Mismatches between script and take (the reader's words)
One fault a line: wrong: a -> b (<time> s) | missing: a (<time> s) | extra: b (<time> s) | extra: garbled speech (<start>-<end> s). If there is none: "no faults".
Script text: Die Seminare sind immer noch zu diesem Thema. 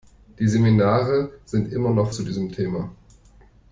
no faults